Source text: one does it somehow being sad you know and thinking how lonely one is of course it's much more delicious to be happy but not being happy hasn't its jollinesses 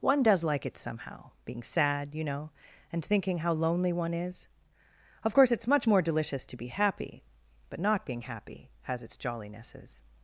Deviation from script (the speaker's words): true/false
true